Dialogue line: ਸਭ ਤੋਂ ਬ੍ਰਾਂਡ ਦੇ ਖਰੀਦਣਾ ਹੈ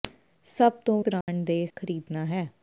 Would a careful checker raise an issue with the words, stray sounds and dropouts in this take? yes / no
yes